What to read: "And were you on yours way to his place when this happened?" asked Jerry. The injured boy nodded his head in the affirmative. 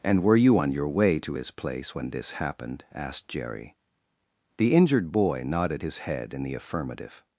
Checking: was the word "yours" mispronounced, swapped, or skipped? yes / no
yes